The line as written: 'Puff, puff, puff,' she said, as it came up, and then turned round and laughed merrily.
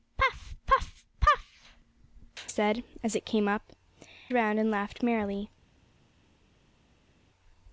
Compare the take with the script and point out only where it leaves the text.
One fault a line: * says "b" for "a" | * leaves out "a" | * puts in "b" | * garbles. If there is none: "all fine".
* leaves out "she"
* leaves out "and then turned"